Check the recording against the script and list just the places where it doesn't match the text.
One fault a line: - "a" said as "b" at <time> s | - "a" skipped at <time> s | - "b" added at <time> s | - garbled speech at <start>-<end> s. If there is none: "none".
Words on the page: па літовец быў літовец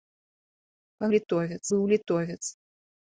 none